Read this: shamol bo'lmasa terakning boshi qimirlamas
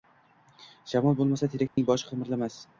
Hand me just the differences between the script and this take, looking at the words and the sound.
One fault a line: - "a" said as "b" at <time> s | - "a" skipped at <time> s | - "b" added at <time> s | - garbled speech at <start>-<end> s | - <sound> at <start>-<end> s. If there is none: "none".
- dropout at 1.7-1.8 s